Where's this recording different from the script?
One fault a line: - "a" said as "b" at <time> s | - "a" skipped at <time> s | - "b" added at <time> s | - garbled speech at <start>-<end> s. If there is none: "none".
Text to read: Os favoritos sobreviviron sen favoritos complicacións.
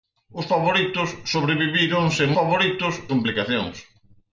none